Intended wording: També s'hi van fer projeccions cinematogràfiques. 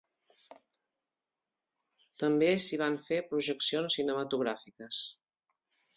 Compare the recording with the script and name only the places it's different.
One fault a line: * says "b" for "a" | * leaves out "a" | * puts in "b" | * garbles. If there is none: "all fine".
all fine